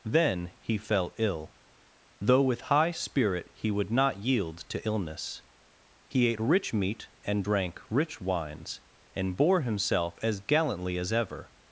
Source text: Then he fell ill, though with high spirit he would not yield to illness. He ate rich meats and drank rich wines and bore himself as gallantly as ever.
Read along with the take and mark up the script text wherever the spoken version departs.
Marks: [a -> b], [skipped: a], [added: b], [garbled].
Then he fell ill, though with high spirit he would not yield to illness. He ate rich [meats -> meat] and drank rich wines and bore himself as gallantly as ever.